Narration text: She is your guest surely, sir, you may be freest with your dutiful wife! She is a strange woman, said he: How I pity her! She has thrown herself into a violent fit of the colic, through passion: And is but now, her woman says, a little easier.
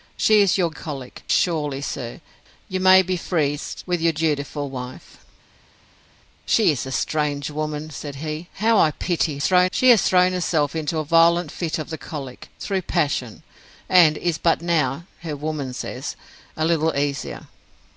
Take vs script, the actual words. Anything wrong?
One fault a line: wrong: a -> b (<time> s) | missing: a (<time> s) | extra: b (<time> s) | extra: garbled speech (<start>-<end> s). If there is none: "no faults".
wrong: guest -> colic (0.7 s)
wrong: her -> thrown (9.4 s)